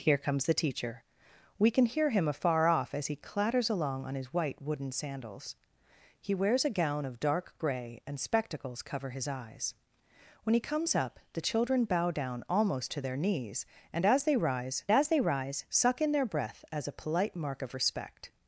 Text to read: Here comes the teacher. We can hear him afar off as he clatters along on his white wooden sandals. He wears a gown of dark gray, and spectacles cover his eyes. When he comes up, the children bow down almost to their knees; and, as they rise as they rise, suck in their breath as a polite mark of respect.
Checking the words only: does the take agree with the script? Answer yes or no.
yes